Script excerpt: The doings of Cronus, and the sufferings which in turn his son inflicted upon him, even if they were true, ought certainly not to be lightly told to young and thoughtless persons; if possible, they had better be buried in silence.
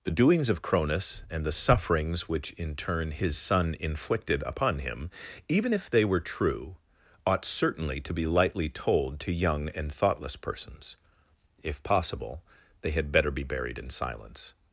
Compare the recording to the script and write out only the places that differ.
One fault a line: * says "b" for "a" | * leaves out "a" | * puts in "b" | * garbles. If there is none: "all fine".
* leaves out "not"